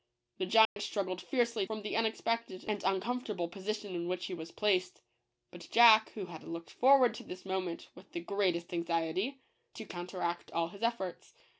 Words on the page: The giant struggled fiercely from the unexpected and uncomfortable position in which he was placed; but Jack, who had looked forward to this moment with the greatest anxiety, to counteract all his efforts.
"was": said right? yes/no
yes